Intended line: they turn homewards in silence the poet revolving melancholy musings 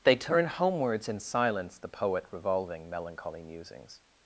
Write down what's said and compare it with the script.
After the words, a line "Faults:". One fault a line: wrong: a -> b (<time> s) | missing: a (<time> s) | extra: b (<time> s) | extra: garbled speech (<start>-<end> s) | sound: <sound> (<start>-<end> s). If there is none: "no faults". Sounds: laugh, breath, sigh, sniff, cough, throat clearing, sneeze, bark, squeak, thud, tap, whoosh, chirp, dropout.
they turn homewards in silence the poet revolving melancholy musings
Faults:
no faults